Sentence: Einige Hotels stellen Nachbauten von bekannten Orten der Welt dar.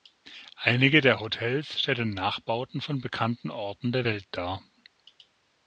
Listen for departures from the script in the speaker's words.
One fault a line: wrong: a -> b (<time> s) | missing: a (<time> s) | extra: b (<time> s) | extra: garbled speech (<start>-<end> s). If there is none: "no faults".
extra: der (1.0 s)